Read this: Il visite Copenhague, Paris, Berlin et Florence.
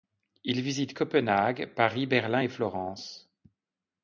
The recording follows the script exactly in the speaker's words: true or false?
true